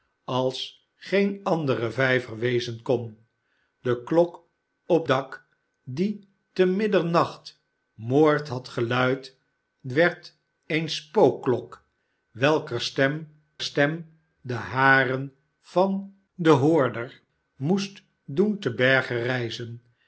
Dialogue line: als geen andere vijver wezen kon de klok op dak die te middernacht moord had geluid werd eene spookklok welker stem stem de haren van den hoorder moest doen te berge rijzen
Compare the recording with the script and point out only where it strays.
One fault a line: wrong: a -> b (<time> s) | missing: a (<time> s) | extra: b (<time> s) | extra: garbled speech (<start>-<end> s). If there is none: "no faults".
no faults